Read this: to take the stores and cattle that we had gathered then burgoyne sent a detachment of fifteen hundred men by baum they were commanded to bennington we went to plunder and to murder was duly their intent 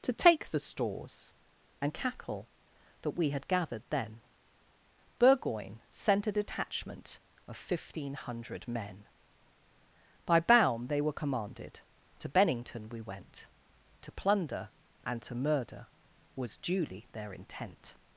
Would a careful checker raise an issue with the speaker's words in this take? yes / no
no